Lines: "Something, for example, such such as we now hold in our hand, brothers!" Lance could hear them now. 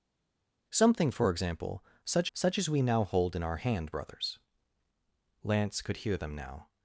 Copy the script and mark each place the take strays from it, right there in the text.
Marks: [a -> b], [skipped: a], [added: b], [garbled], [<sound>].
"Something, for example, such such as we now hold in our hand, brothers!" Lance could hear them now.